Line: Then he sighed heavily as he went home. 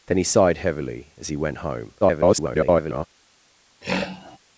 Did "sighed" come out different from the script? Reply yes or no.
no